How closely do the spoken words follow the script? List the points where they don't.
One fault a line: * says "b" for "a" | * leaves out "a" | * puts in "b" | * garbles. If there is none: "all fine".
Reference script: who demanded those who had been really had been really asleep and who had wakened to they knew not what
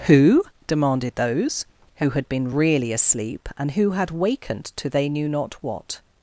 * leaves out "had been really"